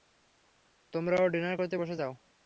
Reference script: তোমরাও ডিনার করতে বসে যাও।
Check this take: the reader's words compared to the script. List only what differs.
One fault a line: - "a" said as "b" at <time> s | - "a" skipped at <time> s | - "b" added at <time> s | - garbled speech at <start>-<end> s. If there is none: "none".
none